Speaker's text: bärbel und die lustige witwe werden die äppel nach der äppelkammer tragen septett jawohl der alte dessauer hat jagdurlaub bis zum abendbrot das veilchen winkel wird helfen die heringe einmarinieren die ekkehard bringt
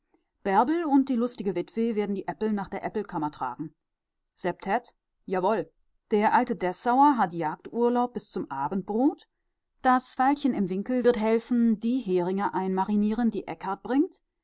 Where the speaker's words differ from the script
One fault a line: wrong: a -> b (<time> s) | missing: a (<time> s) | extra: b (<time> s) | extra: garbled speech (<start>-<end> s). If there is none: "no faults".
extra: im (10.5 s)